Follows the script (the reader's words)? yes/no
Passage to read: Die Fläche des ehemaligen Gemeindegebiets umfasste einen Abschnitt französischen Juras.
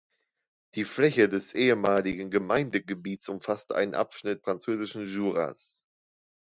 yes